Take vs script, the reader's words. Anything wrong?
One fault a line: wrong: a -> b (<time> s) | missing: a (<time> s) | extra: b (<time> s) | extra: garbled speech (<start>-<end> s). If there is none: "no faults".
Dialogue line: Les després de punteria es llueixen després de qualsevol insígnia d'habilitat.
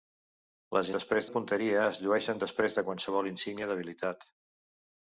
no faults